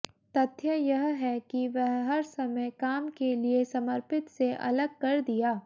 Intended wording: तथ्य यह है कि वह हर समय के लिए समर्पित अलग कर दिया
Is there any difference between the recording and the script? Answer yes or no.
yes